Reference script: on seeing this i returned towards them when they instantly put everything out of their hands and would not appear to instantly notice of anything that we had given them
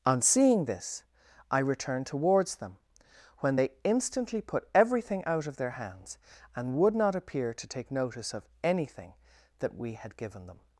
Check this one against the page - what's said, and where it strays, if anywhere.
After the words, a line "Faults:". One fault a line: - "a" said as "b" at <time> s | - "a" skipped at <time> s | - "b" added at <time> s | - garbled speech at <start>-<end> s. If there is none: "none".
on seeing this i returned towards them when they instantly put everything out of their hands and would not appear to take notice of anything that we had given them
Faults:
- "instantly" said as "take" at 7.7 s